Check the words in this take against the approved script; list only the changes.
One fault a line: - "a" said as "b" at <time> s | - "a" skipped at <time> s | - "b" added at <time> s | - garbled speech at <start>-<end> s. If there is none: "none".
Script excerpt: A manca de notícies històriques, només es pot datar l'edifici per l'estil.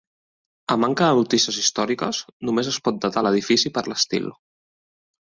none